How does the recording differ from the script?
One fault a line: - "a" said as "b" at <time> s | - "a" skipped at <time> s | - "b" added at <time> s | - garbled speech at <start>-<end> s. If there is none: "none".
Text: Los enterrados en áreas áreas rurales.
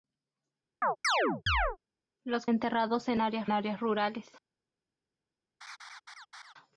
none